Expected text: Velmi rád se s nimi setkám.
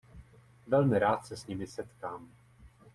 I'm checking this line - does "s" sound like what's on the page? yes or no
yes